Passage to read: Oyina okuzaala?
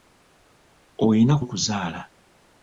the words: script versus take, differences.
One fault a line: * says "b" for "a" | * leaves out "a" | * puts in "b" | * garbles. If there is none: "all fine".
all fine